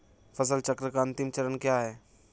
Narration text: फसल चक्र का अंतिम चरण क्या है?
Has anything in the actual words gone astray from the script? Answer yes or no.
no